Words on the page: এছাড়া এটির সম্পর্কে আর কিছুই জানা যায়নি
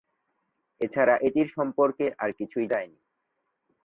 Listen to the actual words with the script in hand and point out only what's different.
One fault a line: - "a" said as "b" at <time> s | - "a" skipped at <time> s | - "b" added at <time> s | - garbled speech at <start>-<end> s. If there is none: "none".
- "জানা" skipped at 2.6 s